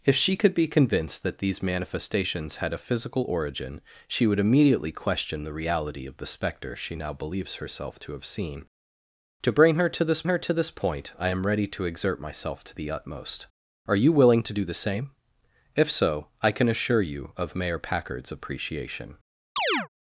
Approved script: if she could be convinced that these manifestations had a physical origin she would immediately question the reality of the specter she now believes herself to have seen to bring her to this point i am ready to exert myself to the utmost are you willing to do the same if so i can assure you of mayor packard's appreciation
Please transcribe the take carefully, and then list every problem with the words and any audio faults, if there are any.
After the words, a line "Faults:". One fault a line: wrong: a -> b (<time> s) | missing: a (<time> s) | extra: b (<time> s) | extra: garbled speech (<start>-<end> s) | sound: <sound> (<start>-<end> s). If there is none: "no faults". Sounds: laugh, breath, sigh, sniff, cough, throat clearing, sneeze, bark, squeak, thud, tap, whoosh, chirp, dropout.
if she could be convinced that these manifestations had a physical origin she would immediately question the reality of the specter she now believes herself to have seen to bring her to this her to this point i am ready to exert myself to the utmost are you willing to do the same if so i can assure you of mayor packard's appreciation
Faults:
extra: her to this (10.2 s)
sound: chirp (19.6-19.9 s)